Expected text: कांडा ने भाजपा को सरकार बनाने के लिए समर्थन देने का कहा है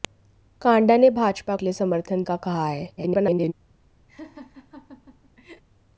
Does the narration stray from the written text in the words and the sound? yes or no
yes